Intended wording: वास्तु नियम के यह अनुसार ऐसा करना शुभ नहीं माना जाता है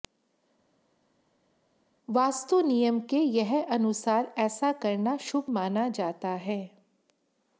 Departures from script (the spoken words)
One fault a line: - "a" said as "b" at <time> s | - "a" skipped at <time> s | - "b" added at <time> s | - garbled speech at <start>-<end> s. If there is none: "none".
- "नहीं" skipped at 5.5 s